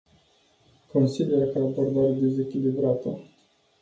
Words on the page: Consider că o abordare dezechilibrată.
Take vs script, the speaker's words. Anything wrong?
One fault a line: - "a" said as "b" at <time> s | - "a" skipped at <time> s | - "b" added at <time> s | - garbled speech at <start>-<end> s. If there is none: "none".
none